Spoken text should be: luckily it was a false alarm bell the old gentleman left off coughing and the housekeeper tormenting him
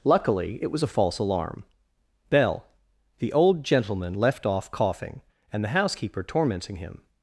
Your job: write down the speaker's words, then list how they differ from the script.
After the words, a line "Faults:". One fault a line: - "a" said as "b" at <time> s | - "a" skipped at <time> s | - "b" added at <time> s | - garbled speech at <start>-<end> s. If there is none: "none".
luckily it was a false alarm bell the old gentleman left off coughing and the housekeeper tormenting him
Faults:
none